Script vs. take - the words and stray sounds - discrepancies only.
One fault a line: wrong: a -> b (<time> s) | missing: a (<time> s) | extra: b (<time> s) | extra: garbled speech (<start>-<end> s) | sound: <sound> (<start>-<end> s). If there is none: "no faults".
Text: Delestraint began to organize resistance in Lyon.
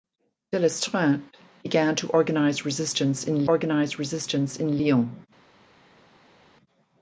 extra: organize resistance in (3.4 s)